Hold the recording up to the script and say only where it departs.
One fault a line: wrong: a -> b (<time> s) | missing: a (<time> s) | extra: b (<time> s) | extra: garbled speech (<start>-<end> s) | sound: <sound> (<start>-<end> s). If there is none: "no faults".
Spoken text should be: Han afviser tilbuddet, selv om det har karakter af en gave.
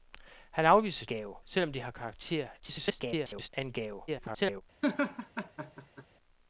wrong: tilbuddet -> gave (1.0 s)
extra: garbled speech (2.6-3.5 s)
extra: garbled speech (4.1-4.6 s)
sound: laugh (4.8-6.1 s)